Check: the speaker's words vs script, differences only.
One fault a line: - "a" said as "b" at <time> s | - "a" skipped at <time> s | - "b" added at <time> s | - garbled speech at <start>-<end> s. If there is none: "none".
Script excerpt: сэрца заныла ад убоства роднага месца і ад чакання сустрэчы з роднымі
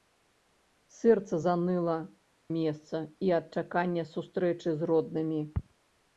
- "ад убоства роднага" skipped at 2.0 s